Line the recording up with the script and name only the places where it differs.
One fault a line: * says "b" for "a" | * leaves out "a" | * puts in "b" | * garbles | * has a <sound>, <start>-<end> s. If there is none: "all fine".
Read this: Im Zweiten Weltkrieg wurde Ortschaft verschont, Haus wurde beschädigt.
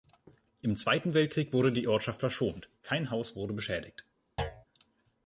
* puts in "die"
* puts in "kein"
* has a thud, 4.4-4.7 s